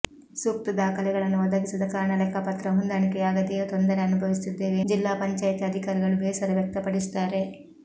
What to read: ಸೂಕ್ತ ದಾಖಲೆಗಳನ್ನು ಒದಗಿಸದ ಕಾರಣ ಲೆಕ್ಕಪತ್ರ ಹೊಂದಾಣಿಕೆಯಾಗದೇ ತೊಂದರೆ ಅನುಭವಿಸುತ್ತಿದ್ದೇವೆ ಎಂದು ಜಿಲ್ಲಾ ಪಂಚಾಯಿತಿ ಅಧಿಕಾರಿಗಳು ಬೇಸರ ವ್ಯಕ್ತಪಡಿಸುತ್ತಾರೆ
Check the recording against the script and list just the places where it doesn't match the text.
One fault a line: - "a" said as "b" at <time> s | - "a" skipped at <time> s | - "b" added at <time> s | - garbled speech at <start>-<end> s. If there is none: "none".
- "ಎಂದು" skipped at 4.8 s